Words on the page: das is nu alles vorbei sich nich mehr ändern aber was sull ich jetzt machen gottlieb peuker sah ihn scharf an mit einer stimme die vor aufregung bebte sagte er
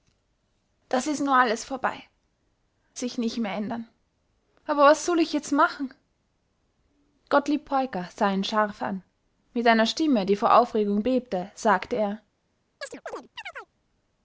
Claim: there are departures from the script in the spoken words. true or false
false